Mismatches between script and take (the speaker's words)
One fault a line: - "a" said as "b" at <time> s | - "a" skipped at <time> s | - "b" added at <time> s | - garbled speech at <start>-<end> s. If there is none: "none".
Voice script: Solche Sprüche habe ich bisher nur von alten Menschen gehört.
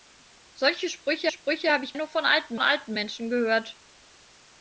- "Sprüche" added at 1.3 s
- "bisher" skipped at 1.9 s
- "alten" added at 2.6 s